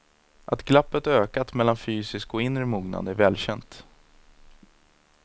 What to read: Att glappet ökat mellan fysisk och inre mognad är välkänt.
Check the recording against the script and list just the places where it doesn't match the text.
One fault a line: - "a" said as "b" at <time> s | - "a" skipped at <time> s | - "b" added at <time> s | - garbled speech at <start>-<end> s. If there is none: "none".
none